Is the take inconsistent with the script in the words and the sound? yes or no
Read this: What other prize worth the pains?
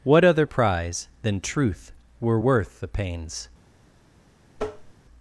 yes